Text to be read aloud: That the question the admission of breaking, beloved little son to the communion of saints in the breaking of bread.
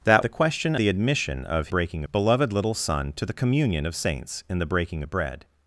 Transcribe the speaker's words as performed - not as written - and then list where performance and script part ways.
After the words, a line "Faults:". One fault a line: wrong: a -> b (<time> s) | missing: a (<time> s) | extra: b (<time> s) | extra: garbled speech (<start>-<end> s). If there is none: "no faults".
That the question the admission of breaking, beloved little son to the communion of saints in the breaking of bread.
Faults:
no faults